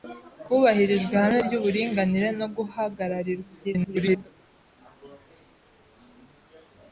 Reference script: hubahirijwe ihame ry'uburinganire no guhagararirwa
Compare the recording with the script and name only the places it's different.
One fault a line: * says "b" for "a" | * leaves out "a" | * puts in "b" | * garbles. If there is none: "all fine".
* garbles